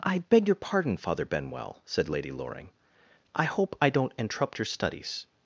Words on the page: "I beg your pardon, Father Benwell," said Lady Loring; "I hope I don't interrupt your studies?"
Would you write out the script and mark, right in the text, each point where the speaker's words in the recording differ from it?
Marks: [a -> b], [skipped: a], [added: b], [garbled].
"I beg your pardon, Father Benwell," said Lady Loring; "I hope I don't interrupt your studies?"